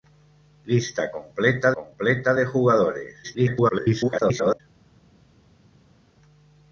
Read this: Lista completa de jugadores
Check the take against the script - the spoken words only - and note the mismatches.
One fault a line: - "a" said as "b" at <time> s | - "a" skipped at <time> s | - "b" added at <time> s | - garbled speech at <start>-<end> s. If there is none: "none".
- "completa" added at 1.7 s
- garbled speech at 3.2-4.6 s